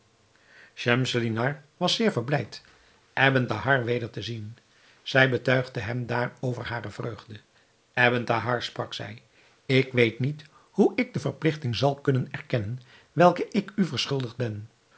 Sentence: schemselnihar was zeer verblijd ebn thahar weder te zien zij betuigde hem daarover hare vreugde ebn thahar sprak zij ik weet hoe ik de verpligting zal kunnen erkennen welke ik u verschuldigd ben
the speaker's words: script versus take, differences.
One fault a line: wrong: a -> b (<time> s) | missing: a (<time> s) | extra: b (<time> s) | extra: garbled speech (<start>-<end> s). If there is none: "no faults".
extra: niet (10.2 s)